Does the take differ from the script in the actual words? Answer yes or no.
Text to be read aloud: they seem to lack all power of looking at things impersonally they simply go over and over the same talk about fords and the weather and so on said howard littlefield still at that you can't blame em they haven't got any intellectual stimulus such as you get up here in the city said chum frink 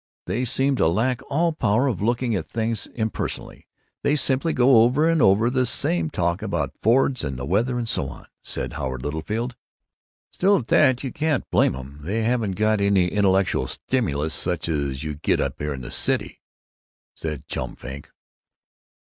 no